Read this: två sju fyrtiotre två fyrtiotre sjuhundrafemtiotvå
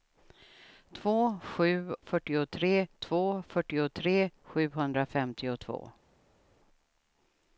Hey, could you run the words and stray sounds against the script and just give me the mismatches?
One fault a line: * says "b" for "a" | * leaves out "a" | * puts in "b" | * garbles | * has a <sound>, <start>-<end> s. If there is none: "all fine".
all fine